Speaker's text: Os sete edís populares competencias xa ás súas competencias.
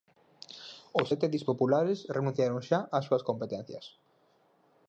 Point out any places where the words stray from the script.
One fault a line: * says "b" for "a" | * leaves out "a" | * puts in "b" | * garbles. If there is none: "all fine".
* says "renunciaron" for "competencias"